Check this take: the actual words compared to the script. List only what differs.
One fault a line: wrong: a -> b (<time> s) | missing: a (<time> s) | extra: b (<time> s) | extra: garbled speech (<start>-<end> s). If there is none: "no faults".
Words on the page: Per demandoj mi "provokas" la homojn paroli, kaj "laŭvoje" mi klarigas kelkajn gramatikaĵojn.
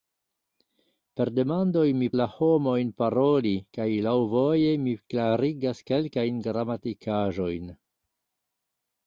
missing: provokas (2.1 s)